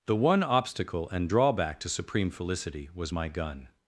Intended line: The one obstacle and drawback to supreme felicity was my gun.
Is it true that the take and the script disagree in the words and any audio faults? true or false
false